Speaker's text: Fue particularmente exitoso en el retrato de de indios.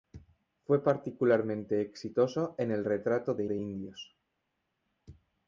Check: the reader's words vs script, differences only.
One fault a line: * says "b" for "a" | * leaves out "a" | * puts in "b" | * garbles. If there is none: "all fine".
all fine